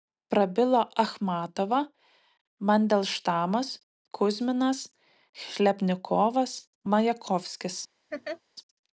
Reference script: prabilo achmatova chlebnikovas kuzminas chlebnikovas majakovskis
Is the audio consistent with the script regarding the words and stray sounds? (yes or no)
no